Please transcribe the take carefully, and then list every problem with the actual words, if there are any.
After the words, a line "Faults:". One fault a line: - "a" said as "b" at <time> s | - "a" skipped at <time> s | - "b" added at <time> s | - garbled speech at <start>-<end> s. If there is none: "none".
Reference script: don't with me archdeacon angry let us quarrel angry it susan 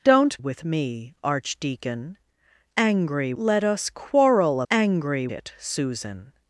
don't with me archdeacon angry let us quarrel angry it susan
Faults:
none